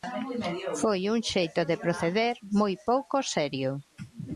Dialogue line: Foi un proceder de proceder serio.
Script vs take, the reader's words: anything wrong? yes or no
yes